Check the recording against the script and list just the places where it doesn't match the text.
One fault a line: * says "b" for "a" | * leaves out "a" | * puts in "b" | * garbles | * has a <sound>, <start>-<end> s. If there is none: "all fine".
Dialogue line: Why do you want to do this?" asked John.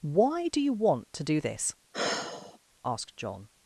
* has a sigh, 1.9-2.6 s